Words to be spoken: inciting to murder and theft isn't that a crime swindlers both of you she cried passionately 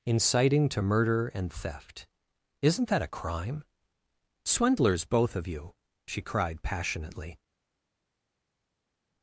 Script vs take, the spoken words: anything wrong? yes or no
no